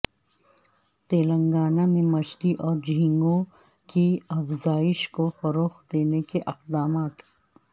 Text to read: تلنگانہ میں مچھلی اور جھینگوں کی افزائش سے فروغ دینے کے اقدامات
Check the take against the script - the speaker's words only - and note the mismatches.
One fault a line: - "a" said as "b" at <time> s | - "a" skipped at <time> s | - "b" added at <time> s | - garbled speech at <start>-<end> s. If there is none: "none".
- "سے" said as "کو" at 5.1 s